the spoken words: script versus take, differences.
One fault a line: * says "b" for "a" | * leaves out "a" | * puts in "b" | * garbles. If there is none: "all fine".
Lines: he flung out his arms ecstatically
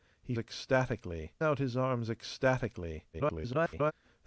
* says "ecstatically" for "flung"
* garbles